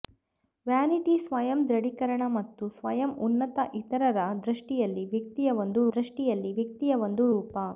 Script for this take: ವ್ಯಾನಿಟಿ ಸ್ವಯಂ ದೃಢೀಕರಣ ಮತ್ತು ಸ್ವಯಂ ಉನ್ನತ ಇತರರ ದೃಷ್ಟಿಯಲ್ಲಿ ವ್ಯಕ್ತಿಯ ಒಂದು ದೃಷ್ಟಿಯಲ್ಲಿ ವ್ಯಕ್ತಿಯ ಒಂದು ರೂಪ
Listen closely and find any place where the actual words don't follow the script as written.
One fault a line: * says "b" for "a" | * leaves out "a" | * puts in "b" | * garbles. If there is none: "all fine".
all fine